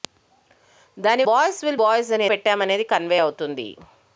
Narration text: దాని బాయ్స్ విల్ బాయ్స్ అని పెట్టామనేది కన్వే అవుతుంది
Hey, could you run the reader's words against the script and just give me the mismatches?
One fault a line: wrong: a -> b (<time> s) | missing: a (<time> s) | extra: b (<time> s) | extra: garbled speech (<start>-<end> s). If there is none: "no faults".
no faults